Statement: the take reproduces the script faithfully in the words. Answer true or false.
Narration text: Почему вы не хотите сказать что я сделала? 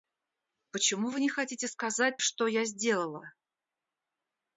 true